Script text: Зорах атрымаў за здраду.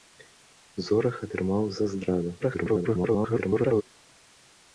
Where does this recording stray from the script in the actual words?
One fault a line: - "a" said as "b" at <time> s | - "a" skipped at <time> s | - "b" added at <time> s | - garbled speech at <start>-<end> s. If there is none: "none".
- garbled speech at 2.4-3.8 s